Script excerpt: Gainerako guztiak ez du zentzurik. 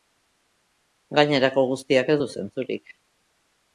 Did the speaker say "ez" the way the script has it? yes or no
yes